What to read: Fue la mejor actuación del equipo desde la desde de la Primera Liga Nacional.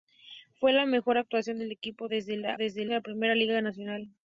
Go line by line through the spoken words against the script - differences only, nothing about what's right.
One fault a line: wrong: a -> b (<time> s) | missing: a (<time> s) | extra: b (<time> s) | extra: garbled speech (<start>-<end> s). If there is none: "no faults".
no faults